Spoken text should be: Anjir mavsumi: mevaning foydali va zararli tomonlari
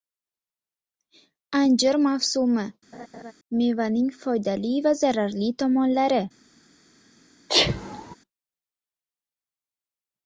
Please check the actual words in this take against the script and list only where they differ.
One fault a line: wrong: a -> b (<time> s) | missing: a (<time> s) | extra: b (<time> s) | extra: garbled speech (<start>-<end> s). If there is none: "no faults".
no faults